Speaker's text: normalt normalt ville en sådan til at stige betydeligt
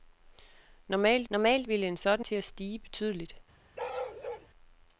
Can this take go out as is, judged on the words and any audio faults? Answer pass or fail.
fail